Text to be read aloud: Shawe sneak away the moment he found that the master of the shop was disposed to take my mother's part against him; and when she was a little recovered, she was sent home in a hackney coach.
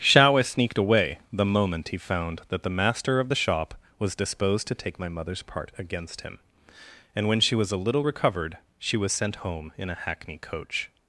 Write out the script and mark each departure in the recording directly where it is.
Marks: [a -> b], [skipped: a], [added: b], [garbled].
Shawe [sneak -> sneaked] away the moment he found that the master of the shop was disposed to take my mother's part against him; and when she was a little recovered, she was sent home in a hackney coach.